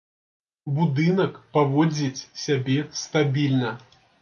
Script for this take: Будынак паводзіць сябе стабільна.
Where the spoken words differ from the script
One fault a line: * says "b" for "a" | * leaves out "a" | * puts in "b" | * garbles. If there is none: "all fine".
all fine